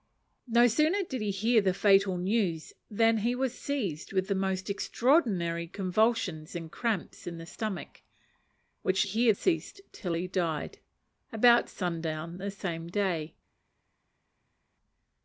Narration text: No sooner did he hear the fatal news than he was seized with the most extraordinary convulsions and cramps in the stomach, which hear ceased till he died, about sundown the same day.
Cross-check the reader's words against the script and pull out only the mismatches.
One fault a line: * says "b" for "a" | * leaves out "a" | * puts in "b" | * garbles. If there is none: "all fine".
all fine